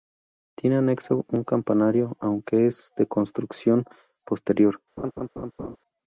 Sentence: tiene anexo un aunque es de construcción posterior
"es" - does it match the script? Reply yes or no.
yes